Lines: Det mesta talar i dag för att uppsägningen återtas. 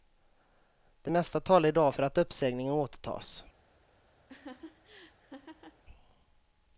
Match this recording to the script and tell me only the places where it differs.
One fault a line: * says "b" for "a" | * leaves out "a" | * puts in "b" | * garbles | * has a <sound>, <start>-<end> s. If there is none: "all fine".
* has a laugh, 4.3-5.8 s